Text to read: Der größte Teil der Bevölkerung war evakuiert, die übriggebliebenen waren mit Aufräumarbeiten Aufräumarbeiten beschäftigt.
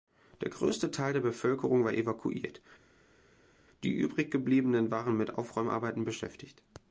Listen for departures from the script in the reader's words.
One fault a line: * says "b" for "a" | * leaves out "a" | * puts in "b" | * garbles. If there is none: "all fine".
* leaves out "Aufräumarbeiten"